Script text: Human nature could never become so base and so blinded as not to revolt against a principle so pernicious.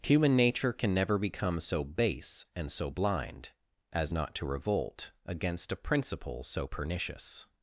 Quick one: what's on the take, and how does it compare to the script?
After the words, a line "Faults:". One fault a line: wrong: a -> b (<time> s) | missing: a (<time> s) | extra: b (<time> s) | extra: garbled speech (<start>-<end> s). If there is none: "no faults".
Human nature can never become so base and so blind as not to revolt against a principle so pernicious.
Faults:
wrong: could -> can (0.7 s)
wrong: blinded -> blind (2.9 s)